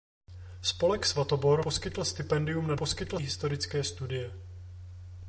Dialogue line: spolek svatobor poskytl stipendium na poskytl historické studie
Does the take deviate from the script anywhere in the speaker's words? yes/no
no